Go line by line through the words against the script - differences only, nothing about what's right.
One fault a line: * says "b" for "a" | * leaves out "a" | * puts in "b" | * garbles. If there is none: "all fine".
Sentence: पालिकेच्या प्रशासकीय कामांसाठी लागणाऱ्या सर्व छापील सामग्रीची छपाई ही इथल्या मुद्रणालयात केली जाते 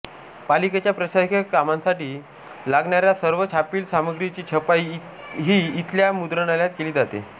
all fine